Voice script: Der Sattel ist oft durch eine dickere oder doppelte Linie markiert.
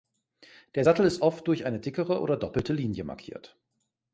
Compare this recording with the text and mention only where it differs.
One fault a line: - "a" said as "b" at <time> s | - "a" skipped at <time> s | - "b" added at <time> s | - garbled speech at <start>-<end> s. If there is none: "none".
none